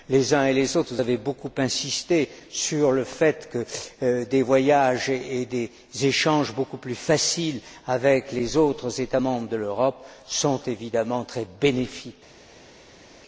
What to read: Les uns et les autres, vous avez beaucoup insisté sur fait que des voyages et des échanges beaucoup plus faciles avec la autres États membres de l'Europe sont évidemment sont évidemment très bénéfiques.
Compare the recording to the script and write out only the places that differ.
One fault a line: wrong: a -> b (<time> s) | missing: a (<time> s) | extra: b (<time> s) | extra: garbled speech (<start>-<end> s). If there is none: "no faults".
extra: le (2.9 s)
wrong: la -> les (8.3 s)
missing: sont évidemment (11.2 s)